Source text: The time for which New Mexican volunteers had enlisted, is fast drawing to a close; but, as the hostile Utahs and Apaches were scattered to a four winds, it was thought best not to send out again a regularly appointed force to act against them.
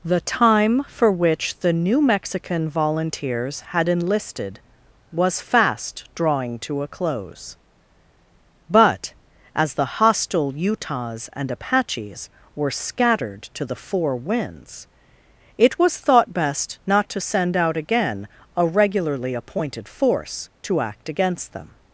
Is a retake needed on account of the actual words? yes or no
yes